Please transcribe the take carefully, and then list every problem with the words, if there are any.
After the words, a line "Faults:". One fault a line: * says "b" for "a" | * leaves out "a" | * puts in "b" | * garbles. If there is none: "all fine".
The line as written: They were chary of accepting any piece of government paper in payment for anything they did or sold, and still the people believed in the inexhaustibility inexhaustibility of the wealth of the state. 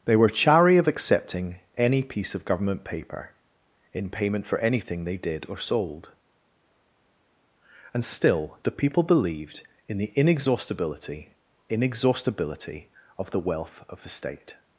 They were chary of accepting any piece of government paper in payment for anything they did or sold, and still the people believed in the inexhaustibility inexhaustibility of the wealth of the state.
Faults:
all fine